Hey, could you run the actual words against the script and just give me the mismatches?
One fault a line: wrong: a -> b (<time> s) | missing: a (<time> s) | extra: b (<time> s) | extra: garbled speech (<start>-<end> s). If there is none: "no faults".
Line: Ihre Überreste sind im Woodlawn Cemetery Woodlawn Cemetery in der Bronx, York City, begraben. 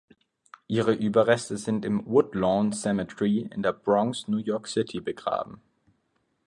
missing: Woodlawn Cemetery (3.5 s)
extra: New (4.3 s)